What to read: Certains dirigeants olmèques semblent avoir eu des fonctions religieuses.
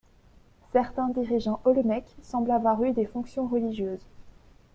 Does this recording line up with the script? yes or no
yes